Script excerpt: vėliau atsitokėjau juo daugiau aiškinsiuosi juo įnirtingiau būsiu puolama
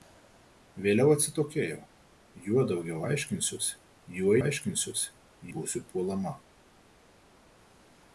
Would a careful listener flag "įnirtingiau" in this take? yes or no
yes